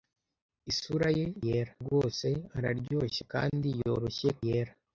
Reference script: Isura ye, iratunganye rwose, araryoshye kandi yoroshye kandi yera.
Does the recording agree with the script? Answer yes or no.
no